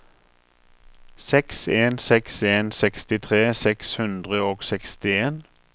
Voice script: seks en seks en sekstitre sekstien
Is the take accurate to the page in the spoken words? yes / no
no